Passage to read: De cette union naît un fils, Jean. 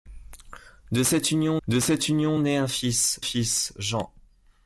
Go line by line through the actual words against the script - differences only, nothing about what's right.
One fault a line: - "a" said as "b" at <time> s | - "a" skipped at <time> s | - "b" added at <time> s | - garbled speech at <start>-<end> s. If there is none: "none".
- "de cette union" added at 1.7 s
- "fils" added at 3.2 s